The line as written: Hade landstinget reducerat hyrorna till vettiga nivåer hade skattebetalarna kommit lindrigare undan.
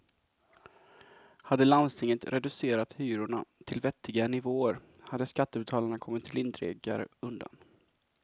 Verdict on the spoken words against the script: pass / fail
pass